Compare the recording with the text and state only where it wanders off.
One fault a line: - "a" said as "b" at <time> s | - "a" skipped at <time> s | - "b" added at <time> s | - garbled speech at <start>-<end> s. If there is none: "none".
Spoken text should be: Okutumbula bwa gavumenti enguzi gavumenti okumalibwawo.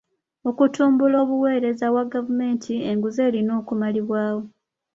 - "obuweereza" added at 1.2 s
- "gavumenti" said as "erina" at 3.3 s